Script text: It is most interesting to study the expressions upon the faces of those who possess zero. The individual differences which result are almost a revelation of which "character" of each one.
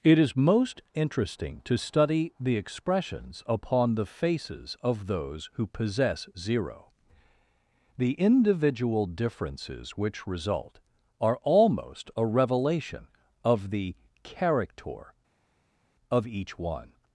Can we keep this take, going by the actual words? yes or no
no